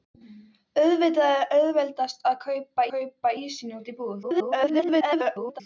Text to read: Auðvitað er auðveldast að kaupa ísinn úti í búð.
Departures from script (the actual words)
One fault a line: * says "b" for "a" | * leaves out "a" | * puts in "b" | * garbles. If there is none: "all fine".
* puts in "kaupa"
* garbles